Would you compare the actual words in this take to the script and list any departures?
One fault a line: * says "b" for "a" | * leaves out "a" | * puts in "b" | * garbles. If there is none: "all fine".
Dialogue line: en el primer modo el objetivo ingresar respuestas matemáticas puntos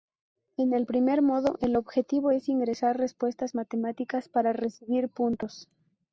* puts in "es"
* puts in "para recibir"